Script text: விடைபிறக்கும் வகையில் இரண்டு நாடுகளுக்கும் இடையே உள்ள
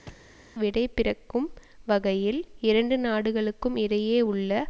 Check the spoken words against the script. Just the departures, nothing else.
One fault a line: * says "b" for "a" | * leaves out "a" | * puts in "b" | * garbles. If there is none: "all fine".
all fine